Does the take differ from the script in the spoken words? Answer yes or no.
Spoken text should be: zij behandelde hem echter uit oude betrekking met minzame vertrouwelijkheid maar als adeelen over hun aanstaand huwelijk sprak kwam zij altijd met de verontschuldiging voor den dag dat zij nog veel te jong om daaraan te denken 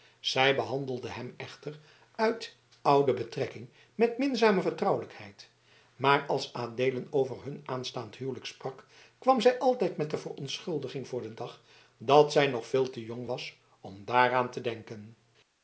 yes